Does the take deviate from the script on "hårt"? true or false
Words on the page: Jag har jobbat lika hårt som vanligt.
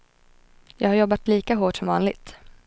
false